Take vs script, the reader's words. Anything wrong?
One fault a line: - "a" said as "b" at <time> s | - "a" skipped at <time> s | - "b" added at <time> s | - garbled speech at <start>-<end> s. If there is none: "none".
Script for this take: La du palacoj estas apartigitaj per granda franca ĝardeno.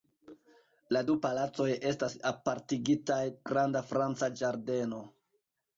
- "per" skipped at 3.2 s